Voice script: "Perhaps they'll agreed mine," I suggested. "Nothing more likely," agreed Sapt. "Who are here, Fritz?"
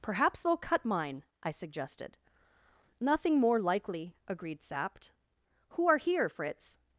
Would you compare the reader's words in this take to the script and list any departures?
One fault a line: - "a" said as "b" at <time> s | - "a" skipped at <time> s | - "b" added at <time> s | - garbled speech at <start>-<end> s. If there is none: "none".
- "agreed" said as "cut" at 0.6 s